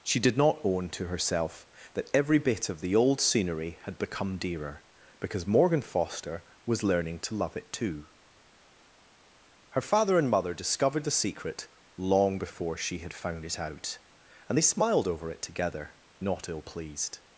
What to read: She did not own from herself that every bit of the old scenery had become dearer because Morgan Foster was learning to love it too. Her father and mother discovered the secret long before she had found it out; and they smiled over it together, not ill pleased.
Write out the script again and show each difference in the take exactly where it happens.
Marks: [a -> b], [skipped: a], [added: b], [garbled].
She did not own [from -> to] herself that every bit of the old scenery had become dearer because Morgan Foster was learning to love it too. Her father and mother discovered the secret long before she had found it out; and they smiled over it together, not ill pleased.